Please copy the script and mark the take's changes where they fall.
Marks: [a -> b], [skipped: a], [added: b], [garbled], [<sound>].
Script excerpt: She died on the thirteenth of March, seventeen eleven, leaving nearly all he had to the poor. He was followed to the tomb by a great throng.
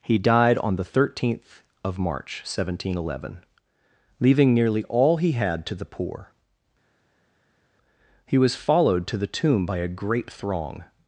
[She -> He] died on the thirteenth of March, seventeen eleven, leaving nearly all he had to the poor. He was followed to the tomb by a great throng.